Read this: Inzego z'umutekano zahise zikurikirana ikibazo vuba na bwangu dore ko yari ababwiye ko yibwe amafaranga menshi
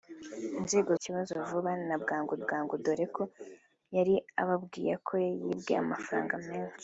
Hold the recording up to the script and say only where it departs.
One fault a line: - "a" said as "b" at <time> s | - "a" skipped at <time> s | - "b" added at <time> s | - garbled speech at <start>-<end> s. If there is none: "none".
- "z'umutekano zahise zikurikirana" skipped at 0.9 s
- "bwangu" added at 2.4 s